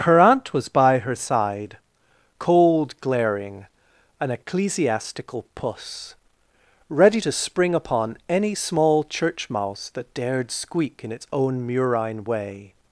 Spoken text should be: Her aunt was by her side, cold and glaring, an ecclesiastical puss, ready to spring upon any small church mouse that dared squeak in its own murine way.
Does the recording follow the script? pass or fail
fail